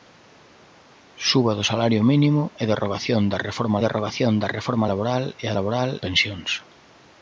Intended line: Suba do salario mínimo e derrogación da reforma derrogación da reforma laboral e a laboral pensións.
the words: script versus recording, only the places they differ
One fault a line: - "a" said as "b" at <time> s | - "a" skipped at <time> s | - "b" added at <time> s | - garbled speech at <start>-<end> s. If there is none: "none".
none